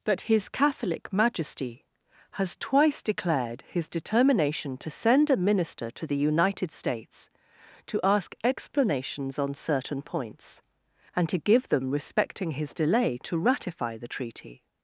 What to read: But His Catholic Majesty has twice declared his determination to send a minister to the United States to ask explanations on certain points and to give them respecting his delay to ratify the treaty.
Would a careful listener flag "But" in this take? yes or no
yes